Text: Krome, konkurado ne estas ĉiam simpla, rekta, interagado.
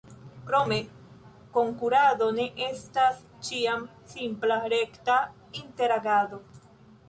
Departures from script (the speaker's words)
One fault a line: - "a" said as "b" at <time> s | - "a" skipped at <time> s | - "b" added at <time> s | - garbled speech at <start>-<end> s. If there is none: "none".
none